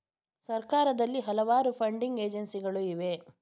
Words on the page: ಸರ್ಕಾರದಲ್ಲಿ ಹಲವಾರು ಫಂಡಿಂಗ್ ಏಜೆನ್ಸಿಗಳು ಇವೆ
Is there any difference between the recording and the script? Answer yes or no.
no